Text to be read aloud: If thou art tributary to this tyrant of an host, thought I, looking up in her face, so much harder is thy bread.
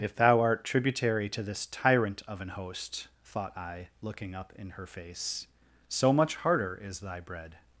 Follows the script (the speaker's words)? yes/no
yes